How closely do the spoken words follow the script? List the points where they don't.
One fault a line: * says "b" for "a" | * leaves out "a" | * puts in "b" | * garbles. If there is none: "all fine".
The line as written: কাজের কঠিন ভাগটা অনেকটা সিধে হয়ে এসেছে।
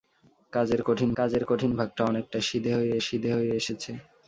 * puts in "কাজের কঠিন"
* puts in "সিধে হয়ে"